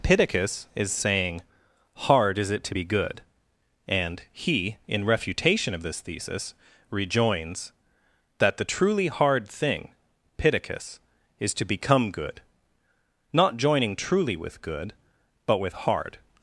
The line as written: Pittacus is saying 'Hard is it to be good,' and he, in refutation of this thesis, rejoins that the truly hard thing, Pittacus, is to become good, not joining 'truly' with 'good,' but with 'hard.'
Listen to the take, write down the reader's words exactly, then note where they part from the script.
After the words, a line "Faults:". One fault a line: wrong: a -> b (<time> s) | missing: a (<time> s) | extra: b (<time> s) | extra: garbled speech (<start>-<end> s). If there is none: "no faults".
Pittacus is saying 'Hard is it to be good,' and he, in refutation of this thesis, rejoins that the truly hard thing, Pittacus, is to become good, not joining 'truly' with 'good,' but with 'hard.'
Faults:
no faults